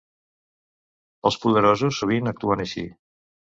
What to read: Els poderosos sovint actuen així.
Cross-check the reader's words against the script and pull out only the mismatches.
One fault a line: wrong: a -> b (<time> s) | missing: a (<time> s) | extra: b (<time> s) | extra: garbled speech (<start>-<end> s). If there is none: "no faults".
no faults